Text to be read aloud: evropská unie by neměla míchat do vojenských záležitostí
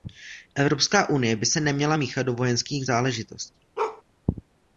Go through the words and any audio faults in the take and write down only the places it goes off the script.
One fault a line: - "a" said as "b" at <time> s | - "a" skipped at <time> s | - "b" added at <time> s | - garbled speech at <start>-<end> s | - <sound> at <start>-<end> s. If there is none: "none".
- "se" added at 1.4 s
- bark at 3.8-4.0 s